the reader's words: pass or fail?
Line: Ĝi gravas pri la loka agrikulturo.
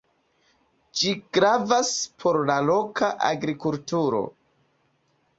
fail